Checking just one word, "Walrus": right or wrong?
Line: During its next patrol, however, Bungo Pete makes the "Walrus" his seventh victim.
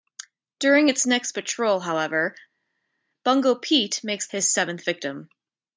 wrong